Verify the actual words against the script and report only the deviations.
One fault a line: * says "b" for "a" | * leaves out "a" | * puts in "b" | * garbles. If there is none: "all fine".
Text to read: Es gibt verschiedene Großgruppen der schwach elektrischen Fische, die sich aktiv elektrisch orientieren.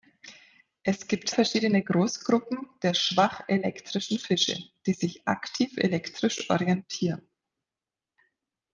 all fine